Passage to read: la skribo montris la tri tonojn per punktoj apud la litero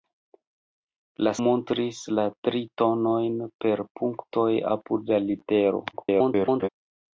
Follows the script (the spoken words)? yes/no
no